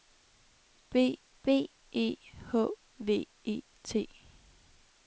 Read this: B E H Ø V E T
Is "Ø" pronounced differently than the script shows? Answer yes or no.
yes